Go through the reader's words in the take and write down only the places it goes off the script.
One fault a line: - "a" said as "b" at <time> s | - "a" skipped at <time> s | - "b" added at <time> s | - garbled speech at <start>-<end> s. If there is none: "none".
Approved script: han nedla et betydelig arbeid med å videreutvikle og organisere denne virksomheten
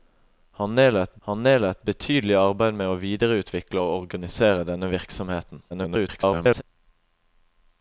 - "han nedla et" added at 1.3 s
- garbled speech at 5.7-6.6 s